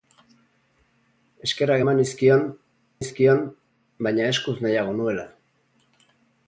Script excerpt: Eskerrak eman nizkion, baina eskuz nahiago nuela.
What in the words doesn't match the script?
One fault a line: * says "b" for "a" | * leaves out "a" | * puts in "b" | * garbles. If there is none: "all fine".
* puts in "nizkion"